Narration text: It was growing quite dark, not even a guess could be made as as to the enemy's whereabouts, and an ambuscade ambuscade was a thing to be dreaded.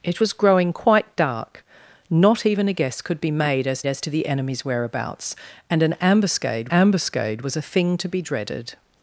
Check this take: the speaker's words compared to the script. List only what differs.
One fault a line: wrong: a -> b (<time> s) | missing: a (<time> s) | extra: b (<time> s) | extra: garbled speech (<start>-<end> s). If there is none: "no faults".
no faults